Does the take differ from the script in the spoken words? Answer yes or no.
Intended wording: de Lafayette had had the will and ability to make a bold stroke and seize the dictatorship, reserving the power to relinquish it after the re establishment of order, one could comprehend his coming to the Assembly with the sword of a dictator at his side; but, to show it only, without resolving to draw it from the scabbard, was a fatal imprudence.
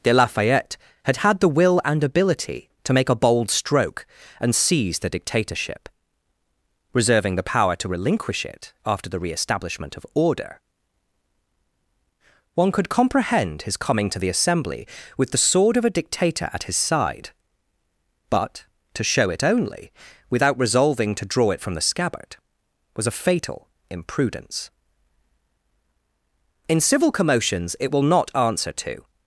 yes